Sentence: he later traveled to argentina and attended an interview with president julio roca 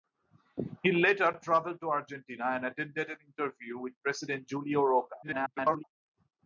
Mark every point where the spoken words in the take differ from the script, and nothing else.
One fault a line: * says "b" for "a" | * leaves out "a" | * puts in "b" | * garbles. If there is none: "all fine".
* garbles